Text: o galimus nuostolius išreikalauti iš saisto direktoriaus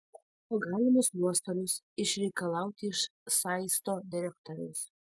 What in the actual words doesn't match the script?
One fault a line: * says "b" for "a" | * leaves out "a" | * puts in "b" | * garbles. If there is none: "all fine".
all fine